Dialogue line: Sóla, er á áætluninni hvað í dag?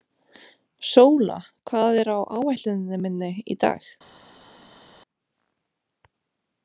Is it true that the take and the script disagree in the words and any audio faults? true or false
true